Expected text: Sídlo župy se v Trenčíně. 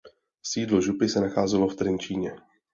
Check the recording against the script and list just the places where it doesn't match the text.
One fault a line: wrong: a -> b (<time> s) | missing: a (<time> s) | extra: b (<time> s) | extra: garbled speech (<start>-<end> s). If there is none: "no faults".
extra: nacházelo (1.2 s)